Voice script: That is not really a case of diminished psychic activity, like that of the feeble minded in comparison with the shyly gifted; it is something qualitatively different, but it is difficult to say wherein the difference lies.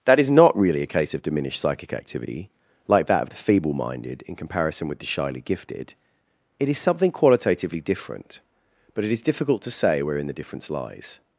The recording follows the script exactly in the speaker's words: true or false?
true